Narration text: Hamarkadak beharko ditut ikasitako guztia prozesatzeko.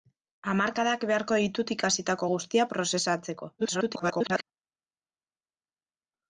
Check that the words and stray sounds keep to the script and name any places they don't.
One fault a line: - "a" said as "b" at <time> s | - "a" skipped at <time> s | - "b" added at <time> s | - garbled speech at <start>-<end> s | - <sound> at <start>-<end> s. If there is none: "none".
- garbled speech at 3.6-4.4 s